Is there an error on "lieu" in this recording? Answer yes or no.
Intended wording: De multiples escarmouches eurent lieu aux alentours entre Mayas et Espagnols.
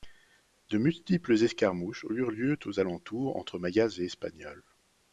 no